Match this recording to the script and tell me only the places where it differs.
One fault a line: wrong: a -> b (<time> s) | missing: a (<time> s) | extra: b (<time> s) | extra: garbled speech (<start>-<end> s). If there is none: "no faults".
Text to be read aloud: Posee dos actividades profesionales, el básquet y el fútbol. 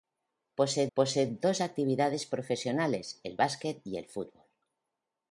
extra: posee (0.9 s)